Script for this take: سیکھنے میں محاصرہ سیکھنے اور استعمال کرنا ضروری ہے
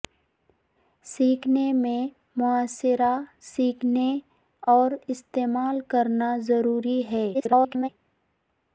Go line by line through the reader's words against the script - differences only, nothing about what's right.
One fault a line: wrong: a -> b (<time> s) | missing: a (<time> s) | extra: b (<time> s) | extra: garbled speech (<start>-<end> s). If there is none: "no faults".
extra: garbled speech (7.3-7.9 s)